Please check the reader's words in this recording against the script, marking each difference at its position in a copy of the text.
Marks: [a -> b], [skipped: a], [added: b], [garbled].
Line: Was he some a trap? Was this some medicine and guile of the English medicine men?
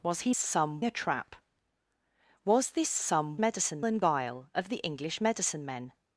Was he some a trap? Was this some medicine and guile of the English medicine men?